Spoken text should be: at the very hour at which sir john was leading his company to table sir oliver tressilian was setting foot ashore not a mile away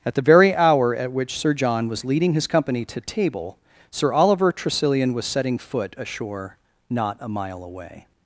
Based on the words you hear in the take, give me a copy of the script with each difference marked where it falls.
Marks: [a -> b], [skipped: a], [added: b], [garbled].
at the very hour at which sir john was leading his company to table sir oliver tressilian was setting foot ashore not a mile away